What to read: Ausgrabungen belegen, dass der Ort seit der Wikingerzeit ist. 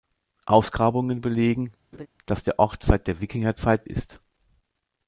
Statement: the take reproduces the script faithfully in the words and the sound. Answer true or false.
false